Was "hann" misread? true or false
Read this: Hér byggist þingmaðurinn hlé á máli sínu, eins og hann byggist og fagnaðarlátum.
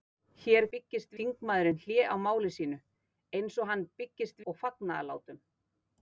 false